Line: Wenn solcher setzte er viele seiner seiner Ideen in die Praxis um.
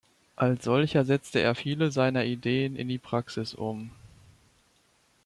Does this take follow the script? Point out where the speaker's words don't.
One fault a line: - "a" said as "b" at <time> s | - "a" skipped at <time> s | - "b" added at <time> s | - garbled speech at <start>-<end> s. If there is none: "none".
- "Wenn" said as "Als" at 0.3 s
- "seiner" skipped at 2.2 s